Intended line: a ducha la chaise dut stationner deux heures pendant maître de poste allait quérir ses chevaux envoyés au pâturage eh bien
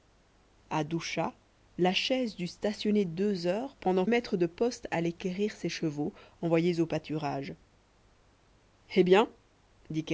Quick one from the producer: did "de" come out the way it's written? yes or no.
yes